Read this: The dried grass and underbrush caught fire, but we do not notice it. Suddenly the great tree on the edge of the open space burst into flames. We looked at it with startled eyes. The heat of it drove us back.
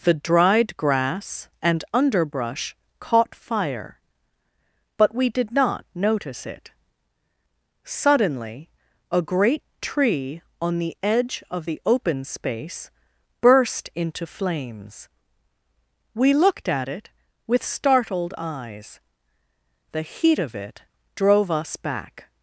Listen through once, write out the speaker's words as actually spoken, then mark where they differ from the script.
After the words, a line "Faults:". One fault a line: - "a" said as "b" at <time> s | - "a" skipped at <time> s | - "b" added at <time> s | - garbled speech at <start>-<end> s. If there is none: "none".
The dried grass and underbrush caught fire, but we did not notice it. Suddenly a great tree on the edge of the open space burst into flames. We looked at it with startled eyes. The heat of it drove us back.
Faults:
- "do" said as "did" at 5.3 s
- "the" said as "a" at 9.1 s